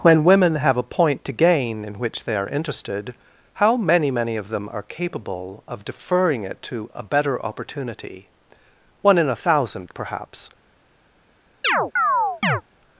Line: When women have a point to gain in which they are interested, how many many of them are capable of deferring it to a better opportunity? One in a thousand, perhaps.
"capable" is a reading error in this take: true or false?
false